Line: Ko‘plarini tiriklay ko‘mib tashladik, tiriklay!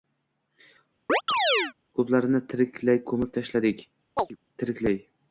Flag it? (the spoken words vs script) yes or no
no